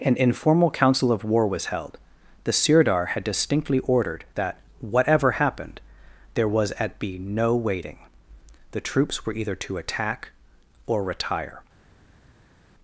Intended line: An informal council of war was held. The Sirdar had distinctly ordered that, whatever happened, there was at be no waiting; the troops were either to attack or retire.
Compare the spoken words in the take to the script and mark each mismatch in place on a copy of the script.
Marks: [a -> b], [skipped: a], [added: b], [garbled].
An informal council of war was held. The Sirdar had distinctly ordered that, whatever happened, there was at be no waiting; the troops were either to attack or retire.